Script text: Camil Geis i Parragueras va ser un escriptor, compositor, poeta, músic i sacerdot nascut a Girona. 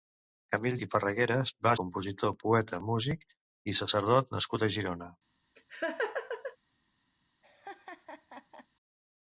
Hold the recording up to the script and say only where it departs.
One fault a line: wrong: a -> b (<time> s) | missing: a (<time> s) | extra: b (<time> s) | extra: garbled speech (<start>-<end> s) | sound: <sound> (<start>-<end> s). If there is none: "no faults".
missing: Geis (0.8 s)
missing: ser un escriptor (1.7 s)
sound: laugh (5.6-6.6 s)
sound: laugh (7.4-8.7 s)